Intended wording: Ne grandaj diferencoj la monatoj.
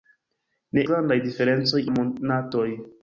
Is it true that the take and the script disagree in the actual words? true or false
false